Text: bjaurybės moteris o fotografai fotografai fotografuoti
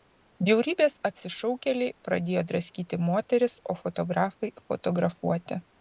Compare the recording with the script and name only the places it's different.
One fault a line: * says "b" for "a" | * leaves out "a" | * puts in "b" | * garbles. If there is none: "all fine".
* puts in "apsišaukėliai pradėjo draskyti"
* leaves out "fotografai"